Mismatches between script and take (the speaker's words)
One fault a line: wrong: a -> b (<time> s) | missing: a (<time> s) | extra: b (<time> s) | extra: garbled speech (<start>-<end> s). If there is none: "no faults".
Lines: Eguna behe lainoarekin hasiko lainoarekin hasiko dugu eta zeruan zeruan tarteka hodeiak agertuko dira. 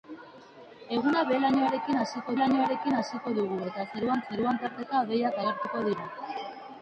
no faults